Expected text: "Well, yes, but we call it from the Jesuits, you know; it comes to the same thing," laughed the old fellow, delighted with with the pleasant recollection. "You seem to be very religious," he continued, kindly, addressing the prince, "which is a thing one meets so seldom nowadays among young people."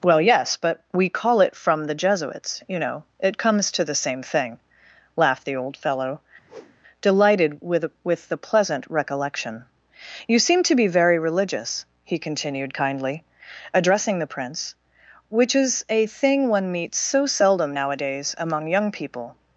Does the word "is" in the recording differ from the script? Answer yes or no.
no